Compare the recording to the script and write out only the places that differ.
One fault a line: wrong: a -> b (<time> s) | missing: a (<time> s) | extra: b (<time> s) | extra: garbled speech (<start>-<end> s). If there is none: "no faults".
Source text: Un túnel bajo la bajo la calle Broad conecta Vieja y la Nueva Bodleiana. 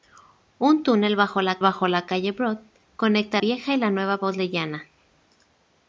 no faults